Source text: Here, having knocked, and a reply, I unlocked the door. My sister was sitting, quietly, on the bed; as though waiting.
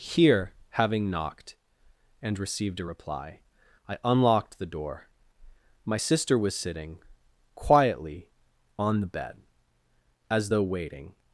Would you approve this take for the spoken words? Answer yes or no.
no